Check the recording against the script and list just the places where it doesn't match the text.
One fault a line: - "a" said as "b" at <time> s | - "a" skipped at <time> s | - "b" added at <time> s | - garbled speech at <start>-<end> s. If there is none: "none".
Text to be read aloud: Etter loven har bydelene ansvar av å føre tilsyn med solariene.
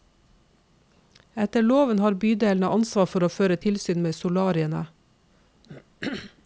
- "av" said as "for" at 3.1 s